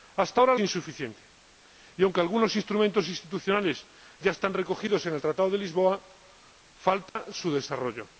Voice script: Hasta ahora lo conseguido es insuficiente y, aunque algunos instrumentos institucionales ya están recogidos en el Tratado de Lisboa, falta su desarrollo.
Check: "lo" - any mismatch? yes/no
yes